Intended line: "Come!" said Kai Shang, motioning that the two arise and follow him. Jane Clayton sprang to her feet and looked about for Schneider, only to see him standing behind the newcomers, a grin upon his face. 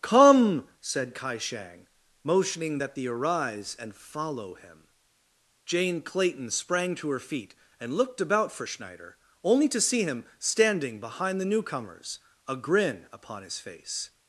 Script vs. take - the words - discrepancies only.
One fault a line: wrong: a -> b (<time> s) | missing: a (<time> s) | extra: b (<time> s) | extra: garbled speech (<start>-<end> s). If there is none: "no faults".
missing: two (3.1 s)